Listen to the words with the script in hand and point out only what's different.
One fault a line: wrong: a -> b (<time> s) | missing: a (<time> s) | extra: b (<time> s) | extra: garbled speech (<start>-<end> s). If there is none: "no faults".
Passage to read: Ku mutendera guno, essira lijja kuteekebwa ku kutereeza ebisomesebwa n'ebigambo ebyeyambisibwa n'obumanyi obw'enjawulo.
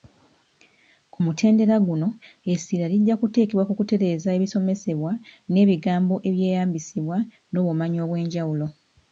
no faults